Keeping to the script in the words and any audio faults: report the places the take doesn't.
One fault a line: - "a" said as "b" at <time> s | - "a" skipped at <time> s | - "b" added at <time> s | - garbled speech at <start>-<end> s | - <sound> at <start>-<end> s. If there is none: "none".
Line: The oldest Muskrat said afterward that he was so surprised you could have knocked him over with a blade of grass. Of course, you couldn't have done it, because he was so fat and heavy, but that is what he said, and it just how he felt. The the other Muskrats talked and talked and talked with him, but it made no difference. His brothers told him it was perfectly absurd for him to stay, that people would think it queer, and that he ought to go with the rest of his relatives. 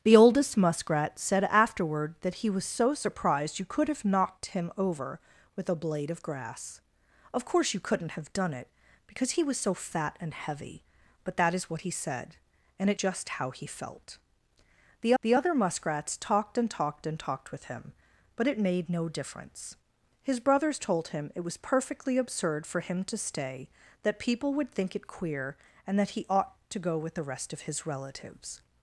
none